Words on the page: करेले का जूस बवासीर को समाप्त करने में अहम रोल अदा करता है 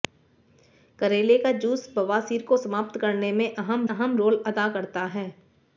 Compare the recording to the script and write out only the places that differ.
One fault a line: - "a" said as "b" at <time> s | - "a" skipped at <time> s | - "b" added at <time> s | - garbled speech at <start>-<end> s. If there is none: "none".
- "अहम" added at 3.9 s